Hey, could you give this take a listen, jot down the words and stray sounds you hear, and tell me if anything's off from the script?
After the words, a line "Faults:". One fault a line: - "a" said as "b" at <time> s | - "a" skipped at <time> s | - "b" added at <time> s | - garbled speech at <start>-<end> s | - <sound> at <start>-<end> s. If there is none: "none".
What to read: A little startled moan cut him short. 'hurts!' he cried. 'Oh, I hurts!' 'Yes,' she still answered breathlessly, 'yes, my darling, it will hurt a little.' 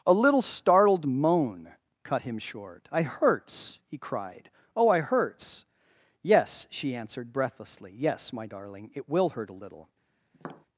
A little startled moan cut him short. 'I hurts!' he cried. 'Oh, I hurts!' 'Yes,' she answered breathlessly, 'yes, my darling, it will hurt a little.'
Faults:
- "I" added at 2.9 s
- "still" skipped at 7.0 s
- tap at 10.3-10.7 s